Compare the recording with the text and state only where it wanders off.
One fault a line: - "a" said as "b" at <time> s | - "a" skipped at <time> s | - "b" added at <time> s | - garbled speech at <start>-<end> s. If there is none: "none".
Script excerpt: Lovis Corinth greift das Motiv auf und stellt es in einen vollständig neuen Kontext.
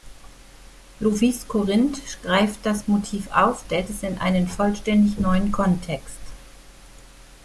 - "und" skipped at 3.7 s